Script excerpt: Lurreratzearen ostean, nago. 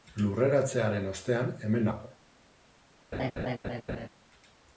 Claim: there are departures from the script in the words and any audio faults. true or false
true